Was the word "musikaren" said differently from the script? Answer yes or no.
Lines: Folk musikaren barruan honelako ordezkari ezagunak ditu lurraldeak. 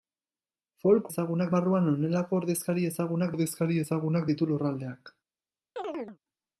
yes